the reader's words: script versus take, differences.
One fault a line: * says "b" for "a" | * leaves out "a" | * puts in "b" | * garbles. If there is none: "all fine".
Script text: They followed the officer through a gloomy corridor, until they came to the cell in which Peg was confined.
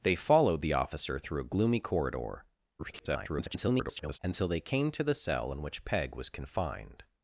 * garbles